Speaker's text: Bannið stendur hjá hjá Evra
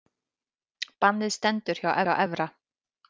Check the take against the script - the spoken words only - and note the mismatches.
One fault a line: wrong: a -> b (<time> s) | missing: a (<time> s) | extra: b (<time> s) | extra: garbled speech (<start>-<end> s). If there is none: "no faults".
no faults